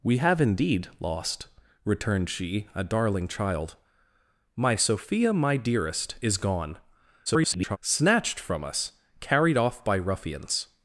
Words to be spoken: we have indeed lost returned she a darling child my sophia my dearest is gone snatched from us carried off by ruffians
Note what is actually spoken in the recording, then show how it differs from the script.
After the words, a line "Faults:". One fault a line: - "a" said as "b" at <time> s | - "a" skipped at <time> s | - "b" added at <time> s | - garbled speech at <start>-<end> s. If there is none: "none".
we have indeed lost returned she a darling child my sophia my dearest is gone [garbled] snatched from us carried off by ruffians
Faults:
- garbled speech at 7.3-7.8 s